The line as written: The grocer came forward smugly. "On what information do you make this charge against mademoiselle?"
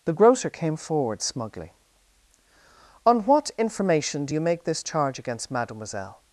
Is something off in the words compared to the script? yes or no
no